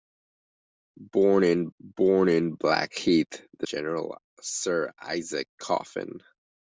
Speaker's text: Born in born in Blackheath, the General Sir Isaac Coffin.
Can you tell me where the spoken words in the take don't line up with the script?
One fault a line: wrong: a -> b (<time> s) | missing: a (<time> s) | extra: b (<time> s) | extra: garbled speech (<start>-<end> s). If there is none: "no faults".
no faults